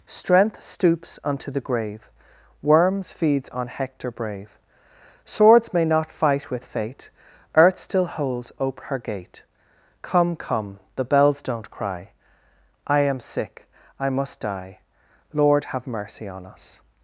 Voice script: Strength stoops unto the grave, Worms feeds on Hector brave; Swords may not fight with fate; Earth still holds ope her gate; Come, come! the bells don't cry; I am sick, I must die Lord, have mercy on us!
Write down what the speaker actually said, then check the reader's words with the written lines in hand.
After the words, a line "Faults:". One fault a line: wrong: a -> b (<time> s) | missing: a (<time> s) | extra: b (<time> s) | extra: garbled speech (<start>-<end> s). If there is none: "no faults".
Strength stoops unto the grave, Worms feeds on Hector brave; Swords may not fight with fate; Earth still holds ope her gate; Come, come! the bells don't cry; I am sick, I must die Lord, have mercy on us!
Faults:
no faults